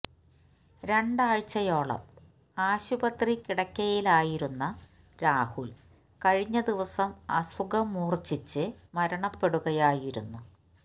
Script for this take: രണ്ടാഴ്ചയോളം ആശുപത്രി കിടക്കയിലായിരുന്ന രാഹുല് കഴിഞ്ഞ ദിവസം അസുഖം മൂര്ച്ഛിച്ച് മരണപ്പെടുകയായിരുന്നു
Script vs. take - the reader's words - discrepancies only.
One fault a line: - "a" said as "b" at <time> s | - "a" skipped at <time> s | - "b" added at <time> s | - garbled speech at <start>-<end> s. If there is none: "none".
none